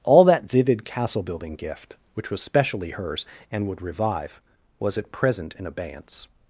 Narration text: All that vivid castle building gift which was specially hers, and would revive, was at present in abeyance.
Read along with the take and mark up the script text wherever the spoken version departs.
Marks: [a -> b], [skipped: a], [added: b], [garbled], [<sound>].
All that vivid castle building gift which was specially hers, and would revive, was at present in abeyance.